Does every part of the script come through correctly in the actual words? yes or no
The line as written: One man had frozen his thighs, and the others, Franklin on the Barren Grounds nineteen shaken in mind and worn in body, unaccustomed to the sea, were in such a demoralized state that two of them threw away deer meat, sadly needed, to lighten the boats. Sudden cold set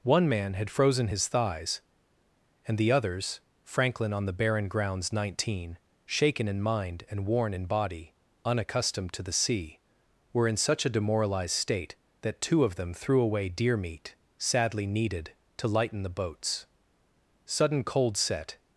yes